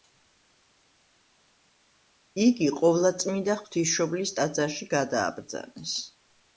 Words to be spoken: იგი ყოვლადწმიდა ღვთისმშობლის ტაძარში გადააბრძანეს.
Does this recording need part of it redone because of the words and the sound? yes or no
no